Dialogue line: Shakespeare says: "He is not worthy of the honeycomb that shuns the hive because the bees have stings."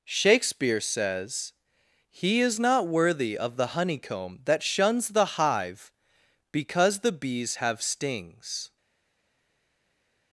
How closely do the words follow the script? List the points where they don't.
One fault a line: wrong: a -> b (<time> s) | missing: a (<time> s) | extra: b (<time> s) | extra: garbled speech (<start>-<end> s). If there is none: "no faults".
no faults